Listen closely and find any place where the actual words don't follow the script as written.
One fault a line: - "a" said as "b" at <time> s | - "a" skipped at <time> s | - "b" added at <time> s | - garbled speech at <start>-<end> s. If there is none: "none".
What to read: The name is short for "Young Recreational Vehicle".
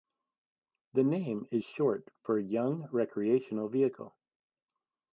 none